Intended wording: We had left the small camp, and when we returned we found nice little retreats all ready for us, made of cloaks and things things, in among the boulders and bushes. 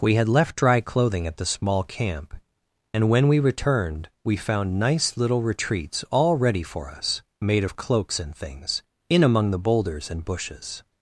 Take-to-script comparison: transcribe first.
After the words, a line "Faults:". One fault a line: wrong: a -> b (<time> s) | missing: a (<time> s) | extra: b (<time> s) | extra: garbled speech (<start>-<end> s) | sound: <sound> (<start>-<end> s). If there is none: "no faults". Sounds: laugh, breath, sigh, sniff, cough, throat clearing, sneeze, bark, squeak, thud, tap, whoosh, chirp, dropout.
We had left dry clothing at the small camp, and when we returned we found nice little retreats all ready for us, made of cloaks and things, in among the boulders and bushes.
Faults:
extra: dry clothing at (0.6 s)
missing: things (8.8 s)